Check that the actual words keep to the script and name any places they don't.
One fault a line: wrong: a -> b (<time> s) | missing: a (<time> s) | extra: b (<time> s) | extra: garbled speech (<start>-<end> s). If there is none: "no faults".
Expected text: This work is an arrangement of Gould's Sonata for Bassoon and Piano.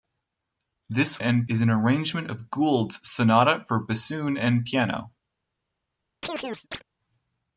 wrong: work -> and (1.2 s)